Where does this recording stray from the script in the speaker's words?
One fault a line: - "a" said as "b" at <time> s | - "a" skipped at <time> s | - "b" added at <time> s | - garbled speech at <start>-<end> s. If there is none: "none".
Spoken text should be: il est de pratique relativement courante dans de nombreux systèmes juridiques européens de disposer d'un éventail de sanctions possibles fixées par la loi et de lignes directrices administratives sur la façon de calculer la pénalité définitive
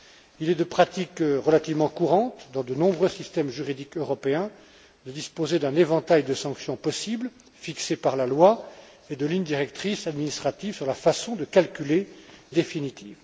- "la pénalité" skipped at 12.1 s